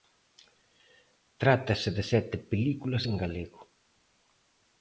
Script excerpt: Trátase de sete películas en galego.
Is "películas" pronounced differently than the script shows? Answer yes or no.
no